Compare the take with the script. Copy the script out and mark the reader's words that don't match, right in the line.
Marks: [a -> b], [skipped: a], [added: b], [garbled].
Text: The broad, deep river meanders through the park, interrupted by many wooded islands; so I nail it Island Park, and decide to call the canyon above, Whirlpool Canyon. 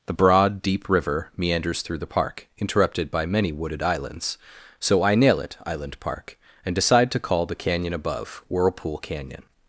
The broad, deep river meanders through the park, interrupted by many wooded islands; so I nail it Island Park, and decide to call the canyon above, Whirlpool Canyon.